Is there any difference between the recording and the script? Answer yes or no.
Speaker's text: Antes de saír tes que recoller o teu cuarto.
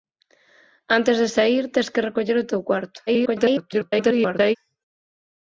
yes